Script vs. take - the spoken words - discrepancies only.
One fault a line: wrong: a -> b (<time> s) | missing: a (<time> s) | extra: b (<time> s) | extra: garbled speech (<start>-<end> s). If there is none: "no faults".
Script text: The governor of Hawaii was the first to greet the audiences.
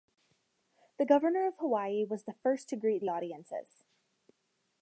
no faults